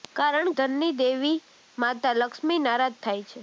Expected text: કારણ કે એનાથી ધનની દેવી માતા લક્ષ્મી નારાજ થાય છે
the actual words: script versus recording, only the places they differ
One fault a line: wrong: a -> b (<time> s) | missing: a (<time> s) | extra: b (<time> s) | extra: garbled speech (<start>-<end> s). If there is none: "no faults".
missing: કે એનાથી (0.5 s)